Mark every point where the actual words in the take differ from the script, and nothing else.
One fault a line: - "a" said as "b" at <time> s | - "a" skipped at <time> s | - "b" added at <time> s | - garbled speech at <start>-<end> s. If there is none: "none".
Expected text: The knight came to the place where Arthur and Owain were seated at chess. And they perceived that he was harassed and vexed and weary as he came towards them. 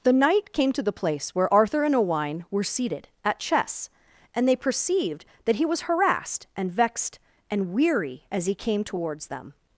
none